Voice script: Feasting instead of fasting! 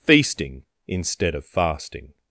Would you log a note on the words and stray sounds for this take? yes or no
no